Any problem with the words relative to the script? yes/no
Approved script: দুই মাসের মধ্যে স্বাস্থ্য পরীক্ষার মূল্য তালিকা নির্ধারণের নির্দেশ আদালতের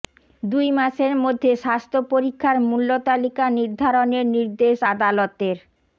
no